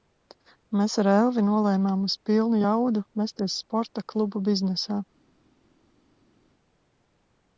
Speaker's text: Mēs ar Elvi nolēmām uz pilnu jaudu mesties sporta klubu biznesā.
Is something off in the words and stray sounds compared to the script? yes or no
no